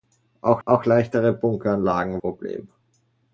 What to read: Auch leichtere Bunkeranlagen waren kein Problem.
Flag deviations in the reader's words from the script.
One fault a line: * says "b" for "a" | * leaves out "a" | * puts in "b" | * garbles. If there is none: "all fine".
* puts in "auch"
* leaves out "waren kein"